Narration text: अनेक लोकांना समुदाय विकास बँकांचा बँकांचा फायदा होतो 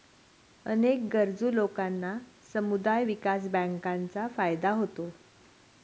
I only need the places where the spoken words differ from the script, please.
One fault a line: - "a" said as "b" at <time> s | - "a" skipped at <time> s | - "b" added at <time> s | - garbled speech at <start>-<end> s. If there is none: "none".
- "गरजू" added at 1.1 s
- "बँकांचा" skipped at 4.3 s